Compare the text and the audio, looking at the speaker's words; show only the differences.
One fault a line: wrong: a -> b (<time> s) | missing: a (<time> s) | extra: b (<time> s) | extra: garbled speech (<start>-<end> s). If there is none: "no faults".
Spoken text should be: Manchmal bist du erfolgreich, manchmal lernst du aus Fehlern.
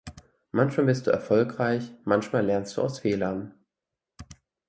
no faults